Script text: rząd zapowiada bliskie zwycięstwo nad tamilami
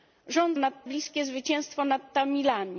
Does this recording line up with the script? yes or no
no